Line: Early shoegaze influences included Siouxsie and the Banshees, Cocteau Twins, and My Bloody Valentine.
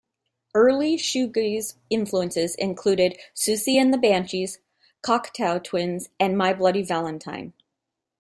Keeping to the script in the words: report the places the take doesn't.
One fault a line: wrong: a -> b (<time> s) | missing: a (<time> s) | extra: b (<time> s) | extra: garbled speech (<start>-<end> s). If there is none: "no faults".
no faults